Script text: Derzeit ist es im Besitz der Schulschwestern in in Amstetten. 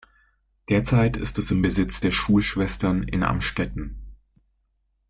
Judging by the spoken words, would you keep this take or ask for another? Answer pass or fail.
fail